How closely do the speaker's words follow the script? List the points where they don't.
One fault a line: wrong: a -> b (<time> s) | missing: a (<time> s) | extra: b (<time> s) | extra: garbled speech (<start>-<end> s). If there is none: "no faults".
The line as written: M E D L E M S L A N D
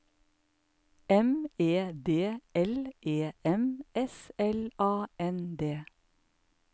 no faults